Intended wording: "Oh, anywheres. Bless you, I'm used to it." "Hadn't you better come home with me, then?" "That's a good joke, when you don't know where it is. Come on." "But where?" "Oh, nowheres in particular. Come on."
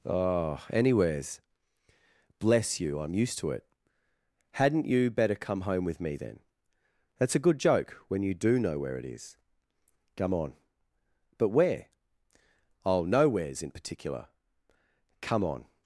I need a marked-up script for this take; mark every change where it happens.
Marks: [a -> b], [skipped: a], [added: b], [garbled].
"Oh, anywheres. Bless you, I'm used to it." "Hadn't you better come home with me, then?" "That's a good joke, when you [don't -> do] know where it is. Come on." "But where?" "Oh, nowheres in particular. Come on."